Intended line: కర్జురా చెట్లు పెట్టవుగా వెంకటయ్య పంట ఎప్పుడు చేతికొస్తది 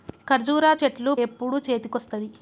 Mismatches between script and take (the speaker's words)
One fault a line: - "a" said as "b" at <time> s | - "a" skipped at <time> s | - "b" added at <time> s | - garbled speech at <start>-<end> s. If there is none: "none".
- "పెట్టవుగా వెంకటయ్య పంట" skipped at 1.1 s